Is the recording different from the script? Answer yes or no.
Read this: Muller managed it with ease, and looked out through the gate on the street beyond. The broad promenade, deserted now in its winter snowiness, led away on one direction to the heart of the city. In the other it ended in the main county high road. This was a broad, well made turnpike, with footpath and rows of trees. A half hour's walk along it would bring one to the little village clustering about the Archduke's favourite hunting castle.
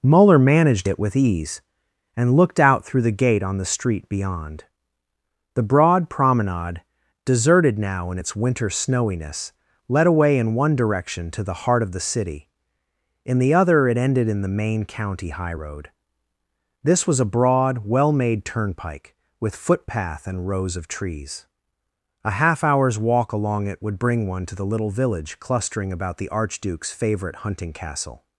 yes